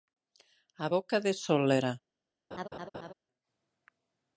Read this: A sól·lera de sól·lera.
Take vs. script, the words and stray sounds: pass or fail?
fail